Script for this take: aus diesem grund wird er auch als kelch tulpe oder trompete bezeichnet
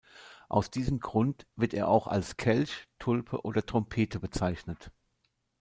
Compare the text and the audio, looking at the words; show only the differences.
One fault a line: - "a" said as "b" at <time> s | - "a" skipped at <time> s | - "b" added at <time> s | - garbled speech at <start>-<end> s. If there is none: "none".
none